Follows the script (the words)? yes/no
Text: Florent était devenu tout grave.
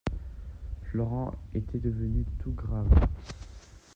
yes